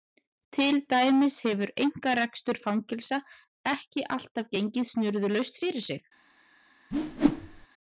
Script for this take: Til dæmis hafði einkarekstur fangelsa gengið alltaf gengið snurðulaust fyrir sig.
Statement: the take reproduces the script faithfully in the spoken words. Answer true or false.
false